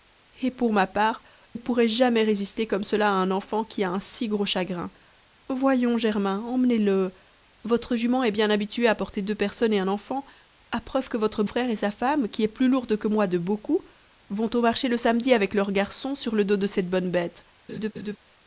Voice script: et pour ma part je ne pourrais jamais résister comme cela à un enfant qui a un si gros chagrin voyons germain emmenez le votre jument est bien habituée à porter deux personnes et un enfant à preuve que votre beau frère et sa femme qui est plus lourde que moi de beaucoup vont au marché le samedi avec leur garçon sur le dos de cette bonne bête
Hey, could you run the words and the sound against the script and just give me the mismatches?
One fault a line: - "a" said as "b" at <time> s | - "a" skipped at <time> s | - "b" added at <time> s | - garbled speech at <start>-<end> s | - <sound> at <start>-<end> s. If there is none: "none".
- "je" skipped at 1.2 s
- "beau" skipped at 11.4 s
- laugh at 17.7-18.2 s